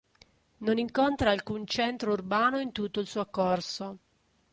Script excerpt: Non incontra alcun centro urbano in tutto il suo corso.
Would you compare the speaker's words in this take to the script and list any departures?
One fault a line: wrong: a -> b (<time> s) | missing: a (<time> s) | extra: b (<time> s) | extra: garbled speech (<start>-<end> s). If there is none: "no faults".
no faults